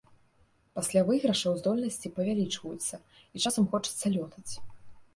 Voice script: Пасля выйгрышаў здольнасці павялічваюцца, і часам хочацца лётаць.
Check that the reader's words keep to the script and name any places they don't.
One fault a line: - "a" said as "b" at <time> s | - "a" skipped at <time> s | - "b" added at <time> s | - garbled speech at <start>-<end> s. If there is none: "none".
none